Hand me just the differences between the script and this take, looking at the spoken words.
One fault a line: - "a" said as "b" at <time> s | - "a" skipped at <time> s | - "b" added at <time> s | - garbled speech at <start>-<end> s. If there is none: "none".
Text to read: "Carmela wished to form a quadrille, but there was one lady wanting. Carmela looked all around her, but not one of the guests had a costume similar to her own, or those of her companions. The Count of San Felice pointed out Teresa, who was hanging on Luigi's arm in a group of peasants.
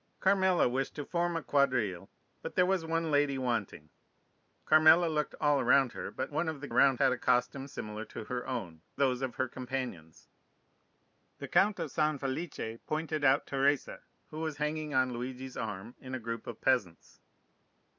- "not" skipped at 6.3 s
- "guests" said as "around" at 6.7 s
- "or" skipped at 8.8 s